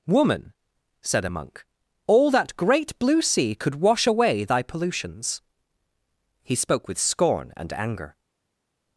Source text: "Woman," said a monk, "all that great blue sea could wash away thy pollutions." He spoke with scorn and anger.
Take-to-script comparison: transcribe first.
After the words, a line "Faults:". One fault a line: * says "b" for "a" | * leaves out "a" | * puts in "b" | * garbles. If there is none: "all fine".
"Woman," said a monk, "all that great blue sea could wash away thy pollutions." He spoke with scorn and anger.
Faults:
all fine